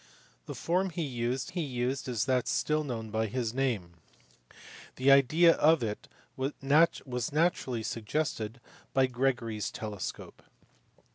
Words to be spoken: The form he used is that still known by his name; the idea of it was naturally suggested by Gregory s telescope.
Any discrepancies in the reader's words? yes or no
yes